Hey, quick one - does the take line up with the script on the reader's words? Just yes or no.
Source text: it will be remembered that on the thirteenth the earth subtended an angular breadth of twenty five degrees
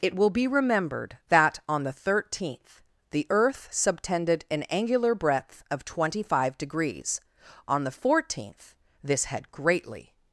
no